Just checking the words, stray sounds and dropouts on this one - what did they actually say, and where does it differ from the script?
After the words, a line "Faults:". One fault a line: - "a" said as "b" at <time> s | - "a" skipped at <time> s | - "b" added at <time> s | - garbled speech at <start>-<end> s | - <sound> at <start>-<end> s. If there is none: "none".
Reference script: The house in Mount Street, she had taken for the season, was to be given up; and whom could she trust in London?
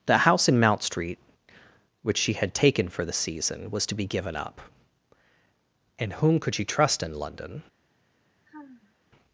The house in Mount Street, which she had taken for the season, was to be given up; and whom could she trust in London?
Faults:
- "which" added at 2.0 s
- sigh at 8.5-8.9 s